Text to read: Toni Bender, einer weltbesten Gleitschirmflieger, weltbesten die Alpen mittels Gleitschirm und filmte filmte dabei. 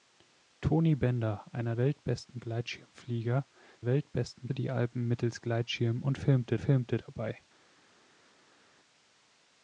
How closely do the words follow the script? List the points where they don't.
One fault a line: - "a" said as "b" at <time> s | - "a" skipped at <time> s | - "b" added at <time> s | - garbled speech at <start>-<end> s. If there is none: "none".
none